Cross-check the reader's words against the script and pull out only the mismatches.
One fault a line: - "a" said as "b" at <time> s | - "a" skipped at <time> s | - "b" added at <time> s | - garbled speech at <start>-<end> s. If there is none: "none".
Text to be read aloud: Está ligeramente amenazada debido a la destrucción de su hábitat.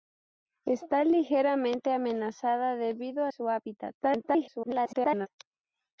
- "la destrucción de" skipped at 3.3 s
- garbled speech at 4.0-5.3 s